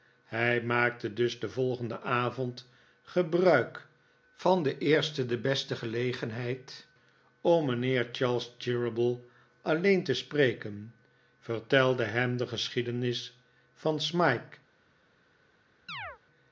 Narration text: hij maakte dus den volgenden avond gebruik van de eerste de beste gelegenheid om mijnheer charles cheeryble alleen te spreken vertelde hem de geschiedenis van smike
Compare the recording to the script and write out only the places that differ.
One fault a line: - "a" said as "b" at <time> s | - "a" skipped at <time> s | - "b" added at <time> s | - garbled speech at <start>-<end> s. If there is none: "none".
none